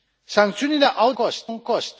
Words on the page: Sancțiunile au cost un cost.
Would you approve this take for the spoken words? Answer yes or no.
yes